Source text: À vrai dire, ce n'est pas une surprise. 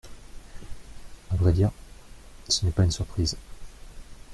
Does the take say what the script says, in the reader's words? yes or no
yes